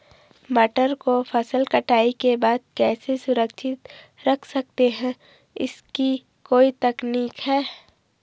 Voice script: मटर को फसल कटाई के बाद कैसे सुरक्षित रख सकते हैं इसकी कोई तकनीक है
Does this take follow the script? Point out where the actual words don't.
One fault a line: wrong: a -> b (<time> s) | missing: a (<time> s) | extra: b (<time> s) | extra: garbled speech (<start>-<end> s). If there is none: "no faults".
no faults